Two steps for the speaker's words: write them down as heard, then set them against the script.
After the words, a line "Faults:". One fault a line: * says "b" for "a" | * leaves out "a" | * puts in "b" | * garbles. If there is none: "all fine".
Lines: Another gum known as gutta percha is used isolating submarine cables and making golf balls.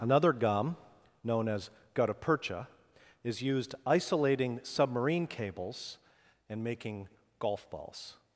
Another gum known as gutta percha is used isolating submarine cables and making golf balls.
Faults:
all fine